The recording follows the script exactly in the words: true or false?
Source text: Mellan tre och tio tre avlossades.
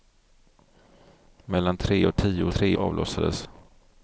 true